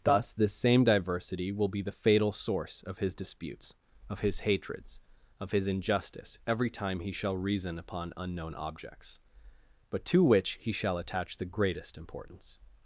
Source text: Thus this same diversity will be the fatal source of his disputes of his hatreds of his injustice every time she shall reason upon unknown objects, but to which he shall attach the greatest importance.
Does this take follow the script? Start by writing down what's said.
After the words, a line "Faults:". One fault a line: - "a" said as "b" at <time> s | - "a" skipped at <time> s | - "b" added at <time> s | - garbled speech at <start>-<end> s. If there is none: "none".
Thus this same diversity will be the fatal source of his disputes of his hatreds of his injustice every time he shall reason upon unknown objects, but to which he shall attach the greatest importance.
Faults:
- "she" said as "he" at 7.0 s